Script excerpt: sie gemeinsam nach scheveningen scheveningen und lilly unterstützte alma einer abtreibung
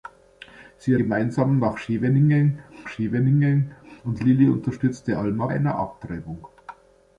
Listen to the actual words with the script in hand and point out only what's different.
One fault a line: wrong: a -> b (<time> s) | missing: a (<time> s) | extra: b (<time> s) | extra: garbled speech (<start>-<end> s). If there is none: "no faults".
no faults